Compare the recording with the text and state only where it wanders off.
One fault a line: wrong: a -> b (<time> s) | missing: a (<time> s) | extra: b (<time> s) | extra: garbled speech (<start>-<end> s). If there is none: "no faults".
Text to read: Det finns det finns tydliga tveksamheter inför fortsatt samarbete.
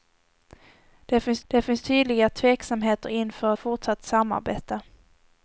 no faults